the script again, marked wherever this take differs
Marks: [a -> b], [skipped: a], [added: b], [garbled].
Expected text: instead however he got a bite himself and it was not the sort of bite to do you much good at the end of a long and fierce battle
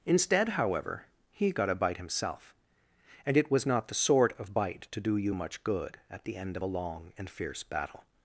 instead however he got a bite himself and it was not the sort of bite to do you much good at the end of a long and fierce battle